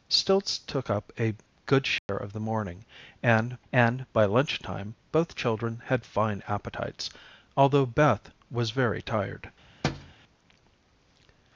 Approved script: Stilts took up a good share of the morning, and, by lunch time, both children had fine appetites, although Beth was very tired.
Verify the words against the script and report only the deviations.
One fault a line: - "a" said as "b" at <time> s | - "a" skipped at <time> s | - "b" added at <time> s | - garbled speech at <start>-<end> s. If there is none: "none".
- "and" added at 3.7 s